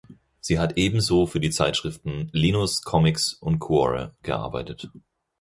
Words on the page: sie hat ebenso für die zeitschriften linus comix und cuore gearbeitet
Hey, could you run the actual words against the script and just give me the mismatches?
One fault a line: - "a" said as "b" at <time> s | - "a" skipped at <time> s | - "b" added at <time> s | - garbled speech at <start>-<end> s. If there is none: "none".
none